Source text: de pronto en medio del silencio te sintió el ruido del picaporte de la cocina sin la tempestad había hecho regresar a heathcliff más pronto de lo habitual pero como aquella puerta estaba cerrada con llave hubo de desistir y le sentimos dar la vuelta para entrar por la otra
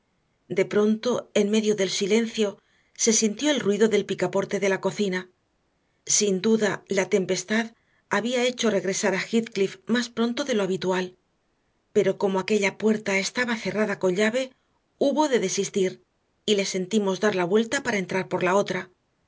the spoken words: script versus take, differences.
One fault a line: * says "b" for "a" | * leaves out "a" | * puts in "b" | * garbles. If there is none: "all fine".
* says "se" for "te"
* puts in "duda"